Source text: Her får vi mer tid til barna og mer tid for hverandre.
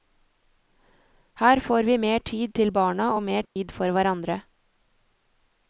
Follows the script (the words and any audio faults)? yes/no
no